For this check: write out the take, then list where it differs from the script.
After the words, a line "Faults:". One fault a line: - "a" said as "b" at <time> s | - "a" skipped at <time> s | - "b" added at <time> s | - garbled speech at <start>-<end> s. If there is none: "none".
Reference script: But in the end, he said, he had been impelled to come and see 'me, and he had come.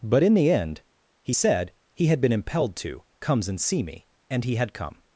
But in the end, he said, he had been impelled to comes and see 'me, and he had come.
Faults:
- "come" said as "comes" at 3.2 s